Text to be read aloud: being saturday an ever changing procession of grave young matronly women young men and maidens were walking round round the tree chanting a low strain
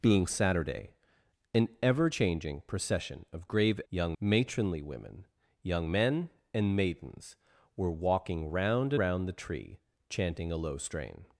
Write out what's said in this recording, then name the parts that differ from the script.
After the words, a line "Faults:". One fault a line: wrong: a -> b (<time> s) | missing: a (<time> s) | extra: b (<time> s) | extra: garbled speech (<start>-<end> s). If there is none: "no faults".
being saturday an ever changing procession of grave young matronly women young men and maidens were walking round round the tree chanting a low strain
Faults:
no faults